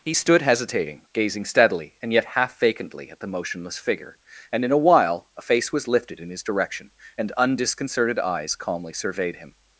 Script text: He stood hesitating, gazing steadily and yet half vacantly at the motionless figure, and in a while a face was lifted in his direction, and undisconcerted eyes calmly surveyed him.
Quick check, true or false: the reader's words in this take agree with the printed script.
true